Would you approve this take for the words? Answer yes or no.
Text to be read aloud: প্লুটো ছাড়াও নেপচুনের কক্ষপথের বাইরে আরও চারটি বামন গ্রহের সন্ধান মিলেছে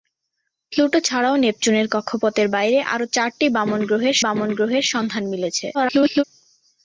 no